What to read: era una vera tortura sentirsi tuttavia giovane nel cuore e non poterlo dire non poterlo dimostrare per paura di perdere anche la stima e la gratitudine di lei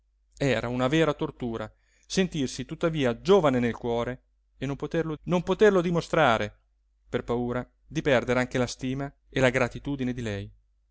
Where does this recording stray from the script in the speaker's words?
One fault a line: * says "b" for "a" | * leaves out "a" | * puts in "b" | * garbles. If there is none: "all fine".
* leaves out "dire"